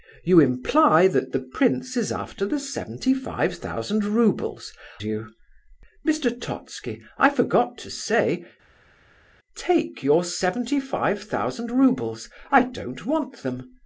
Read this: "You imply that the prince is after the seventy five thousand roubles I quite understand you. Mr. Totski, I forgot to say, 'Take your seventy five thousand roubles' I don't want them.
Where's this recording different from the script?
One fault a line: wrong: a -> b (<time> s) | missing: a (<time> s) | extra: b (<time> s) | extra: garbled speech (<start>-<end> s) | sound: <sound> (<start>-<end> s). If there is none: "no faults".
missing: I quite understand (4.7 s)